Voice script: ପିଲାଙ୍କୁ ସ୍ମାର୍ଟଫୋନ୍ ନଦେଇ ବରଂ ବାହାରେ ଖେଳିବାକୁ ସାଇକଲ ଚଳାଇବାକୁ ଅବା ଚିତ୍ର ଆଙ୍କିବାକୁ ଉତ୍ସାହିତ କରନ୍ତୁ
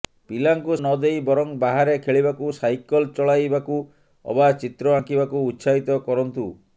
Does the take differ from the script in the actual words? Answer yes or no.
yes